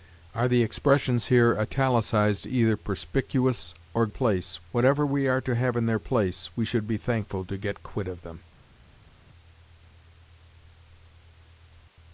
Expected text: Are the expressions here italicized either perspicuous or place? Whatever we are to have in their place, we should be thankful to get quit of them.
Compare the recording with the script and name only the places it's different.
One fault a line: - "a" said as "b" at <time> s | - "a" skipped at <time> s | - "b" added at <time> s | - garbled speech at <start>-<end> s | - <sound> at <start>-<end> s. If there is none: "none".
none